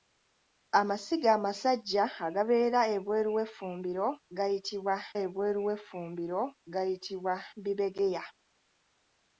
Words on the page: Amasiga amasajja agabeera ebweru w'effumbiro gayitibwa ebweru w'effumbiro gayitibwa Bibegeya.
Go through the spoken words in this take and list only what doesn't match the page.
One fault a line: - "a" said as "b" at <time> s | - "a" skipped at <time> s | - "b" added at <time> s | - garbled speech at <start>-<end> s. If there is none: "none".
none